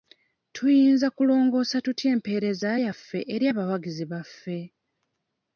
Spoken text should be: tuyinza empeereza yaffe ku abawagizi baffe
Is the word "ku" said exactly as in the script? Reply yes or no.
no